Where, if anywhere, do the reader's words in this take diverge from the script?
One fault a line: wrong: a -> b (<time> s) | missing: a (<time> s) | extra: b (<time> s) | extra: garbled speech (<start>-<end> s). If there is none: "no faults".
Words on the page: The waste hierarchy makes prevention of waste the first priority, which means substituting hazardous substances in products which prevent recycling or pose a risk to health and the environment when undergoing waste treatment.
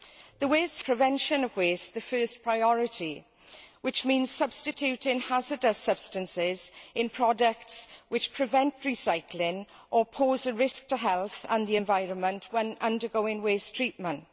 missing: hierarchy makes (0.8 s)